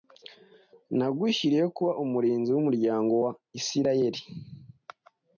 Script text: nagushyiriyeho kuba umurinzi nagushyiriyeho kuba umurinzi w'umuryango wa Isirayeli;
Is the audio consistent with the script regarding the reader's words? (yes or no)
no